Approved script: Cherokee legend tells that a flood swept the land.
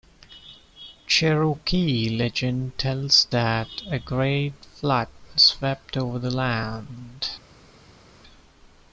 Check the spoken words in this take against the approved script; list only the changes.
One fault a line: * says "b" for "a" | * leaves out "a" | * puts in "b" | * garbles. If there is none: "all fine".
* puts in "great"
* puts in "over"